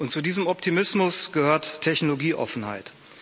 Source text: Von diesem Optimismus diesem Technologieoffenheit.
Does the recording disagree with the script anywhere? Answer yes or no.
yes